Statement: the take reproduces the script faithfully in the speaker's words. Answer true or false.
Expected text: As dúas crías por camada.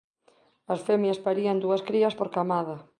false